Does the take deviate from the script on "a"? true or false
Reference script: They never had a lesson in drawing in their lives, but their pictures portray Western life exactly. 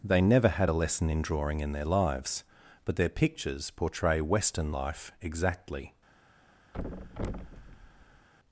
false